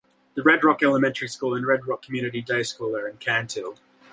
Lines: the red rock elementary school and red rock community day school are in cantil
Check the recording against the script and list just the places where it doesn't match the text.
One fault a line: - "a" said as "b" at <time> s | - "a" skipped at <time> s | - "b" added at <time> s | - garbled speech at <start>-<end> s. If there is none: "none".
none